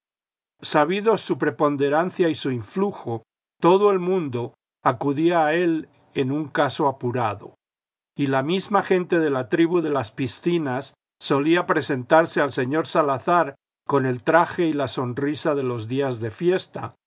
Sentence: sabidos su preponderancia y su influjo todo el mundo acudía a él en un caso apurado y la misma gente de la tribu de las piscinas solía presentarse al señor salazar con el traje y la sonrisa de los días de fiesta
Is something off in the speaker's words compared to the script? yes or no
no